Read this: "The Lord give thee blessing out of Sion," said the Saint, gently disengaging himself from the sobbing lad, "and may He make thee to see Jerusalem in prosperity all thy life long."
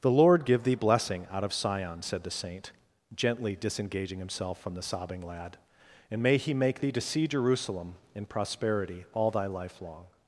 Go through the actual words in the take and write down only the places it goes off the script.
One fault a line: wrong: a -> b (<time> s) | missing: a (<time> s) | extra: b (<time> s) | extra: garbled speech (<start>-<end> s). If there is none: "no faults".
no faults